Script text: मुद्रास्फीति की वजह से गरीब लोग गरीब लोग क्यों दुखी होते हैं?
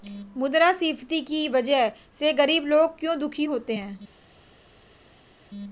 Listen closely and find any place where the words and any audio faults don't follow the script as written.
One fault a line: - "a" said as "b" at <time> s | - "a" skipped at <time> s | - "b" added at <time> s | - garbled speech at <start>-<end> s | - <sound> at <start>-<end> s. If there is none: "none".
- "गरीब लोग" skipped at 3.0 s